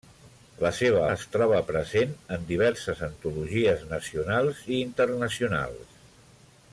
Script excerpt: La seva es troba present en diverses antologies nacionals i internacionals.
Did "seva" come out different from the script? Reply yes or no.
no